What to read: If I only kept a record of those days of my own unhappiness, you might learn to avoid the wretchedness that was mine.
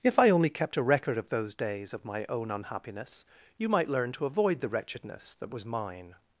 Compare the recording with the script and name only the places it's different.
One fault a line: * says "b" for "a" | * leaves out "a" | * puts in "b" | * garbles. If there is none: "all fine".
all fine